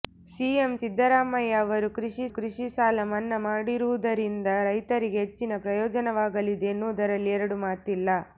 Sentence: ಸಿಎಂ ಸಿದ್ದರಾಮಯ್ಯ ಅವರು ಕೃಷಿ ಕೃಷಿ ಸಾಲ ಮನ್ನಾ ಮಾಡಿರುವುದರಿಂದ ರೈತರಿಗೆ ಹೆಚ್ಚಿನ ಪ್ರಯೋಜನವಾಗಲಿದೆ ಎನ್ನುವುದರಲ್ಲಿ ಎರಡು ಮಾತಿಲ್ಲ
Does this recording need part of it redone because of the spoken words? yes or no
no